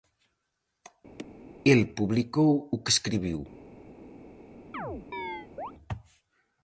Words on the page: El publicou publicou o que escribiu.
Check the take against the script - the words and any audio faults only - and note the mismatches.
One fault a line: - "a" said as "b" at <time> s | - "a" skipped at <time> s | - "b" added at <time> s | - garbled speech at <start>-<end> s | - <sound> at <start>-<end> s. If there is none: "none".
- chirp at 1.2-1.3 s
- "publicou" skipped at 2.5 s
- chirp at 4.7-5.7 s